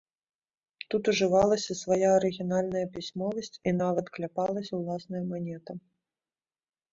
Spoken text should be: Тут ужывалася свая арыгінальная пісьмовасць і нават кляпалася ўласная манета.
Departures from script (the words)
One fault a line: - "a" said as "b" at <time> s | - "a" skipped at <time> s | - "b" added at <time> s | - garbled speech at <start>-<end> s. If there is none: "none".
none